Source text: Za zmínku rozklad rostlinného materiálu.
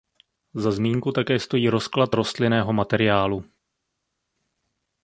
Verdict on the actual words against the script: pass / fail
fail